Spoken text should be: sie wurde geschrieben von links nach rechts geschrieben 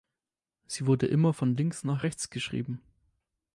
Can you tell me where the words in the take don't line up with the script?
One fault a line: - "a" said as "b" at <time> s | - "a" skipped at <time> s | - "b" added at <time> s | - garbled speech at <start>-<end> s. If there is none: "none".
- "geschrieben" said as "immer" at 1.1 s